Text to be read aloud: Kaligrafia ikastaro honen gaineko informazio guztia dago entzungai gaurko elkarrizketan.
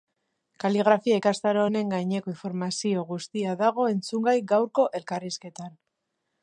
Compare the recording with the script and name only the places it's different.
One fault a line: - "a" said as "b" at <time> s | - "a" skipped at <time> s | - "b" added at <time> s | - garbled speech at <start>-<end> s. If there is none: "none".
none